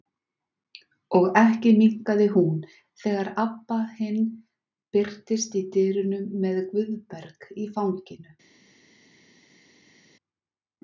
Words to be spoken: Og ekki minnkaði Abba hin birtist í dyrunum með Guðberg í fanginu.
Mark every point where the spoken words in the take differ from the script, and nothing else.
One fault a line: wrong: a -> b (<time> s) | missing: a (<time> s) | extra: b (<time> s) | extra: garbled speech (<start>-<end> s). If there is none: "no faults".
extra: hún þegar (2.4 s)